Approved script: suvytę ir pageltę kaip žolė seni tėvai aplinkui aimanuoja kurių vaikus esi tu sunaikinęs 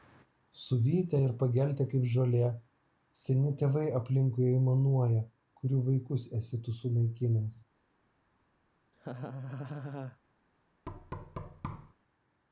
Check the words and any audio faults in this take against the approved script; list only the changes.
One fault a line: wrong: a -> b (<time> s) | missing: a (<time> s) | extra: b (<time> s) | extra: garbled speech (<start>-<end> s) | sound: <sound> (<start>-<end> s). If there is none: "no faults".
sound: laugh (8.9-10.2 s)
sound: thud (10.9-11.9 s)